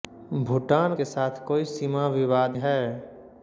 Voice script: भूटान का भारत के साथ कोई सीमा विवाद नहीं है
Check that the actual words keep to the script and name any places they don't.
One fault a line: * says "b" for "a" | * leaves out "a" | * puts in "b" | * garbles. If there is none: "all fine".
* leaves out "का भारत"
* leaves out "नहीं"